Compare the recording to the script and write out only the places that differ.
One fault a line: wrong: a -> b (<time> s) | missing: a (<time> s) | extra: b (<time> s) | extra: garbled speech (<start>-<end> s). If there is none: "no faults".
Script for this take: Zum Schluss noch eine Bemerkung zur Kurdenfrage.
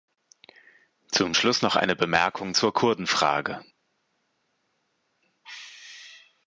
no faults